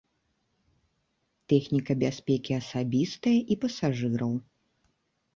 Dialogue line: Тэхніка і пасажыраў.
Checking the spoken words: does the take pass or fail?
fail